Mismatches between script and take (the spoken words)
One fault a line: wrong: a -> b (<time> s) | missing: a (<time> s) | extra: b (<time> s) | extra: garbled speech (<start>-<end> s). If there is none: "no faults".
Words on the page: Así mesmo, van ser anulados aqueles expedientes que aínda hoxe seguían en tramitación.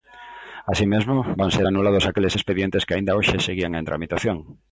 no faults